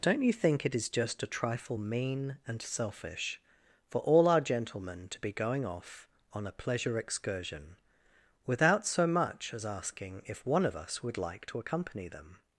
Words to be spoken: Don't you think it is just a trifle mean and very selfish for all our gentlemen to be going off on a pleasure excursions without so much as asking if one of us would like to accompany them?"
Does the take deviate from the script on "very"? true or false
true